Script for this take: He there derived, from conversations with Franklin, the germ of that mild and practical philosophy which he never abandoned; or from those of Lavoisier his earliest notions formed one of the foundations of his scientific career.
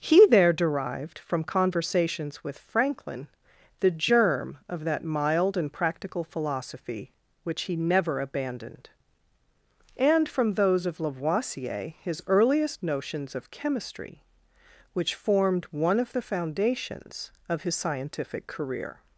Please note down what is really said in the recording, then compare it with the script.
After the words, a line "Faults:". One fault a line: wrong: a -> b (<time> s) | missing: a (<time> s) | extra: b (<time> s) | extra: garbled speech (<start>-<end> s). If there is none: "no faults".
He there derived, from conversations with Franklin, the germ of that mild and practical philosophy which he never abandoned; and from those of Lavoisier his earliest notions of chemistry, which formed one of the foundations of his scientific career.
Faults:
wrong: or -> and (9.9 s)
extra: of chemistry which (13.3 s)